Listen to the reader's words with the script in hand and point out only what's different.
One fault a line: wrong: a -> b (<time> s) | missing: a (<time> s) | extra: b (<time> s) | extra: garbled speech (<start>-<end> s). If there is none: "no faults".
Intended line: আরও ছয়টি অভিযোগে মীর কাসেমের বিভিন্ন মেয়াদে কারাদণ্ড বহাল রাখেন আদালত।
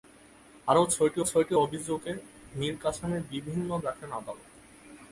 extra: ছয়টি (1.2 s)
missing: মেয়াদে কারাদণ্ড বহাল (3.7 s)